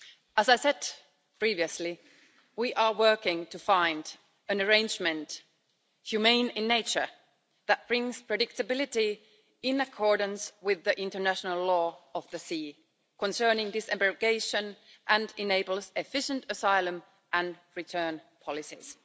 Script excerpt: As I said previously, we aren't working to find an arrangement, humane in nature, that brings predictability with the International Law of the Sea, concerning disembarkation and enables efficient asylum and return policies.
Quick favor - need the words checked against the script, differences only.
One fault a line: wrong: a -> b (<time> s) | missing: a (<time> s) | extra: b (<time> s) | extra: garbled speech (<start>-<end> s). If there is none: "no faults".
wrong: aren't -> are (2.7 s)
extra: in accordance (9.6 s)